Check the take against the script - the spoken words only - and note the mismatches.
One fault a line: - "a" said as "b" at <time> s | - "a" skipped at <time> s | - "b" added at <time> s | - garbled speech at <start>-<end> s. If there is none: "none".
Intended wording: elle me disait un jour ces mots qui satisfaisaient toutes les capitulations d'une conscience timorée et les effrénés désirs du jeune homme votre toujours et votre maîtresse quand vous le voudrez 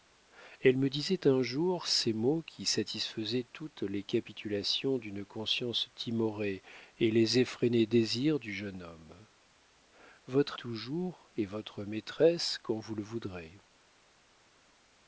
none